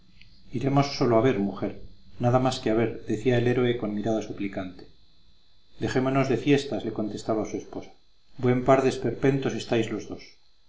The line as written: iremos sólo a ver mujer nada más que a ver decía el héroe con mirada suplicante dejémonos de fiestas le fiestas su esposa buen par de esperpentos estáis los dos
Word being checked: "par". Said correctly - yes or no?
yes